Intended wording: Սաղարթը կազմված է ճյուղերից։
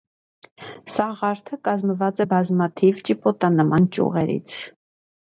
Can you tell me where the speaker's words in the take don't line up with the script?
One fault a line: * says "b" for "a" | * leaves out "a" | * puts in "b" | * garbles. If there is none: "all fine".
* puts in "բազմաթիվ ճիպոտանման"